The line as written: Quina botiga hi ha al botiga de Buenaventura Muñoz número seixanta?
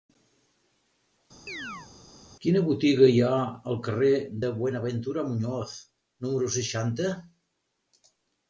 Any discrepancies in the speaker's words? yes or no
yes